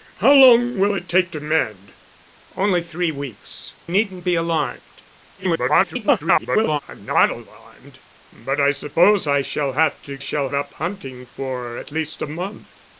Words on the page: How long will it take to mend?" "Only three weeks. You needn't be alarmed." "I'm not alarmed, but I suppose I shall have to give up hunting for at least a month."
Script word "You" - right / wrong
wrong